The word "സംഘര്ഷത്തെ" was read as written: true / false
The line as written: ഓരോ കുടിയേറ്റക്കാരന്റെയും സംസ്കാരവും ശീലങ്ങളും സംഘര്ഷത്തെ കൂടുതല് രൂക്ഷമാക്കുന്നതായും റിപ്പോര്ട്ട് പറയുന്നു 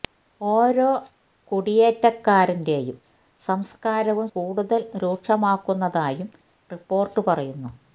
false